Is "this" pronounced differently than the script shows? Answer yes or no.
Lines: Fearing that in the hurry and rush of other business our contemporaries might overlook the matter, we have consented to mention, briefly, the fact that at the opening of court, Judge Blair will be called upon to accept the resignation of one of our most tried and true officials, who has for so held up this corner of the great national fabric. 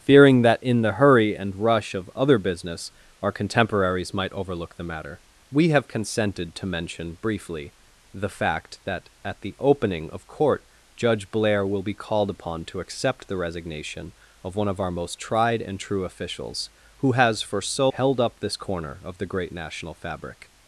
no